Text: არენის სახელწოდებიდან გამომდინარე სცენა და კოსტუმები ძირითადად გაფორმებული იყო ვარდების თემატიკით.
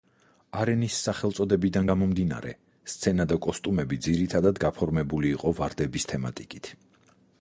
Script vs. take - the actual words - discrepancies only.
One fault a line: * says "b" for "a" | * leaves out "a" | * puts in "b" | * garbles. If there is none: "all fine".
all fine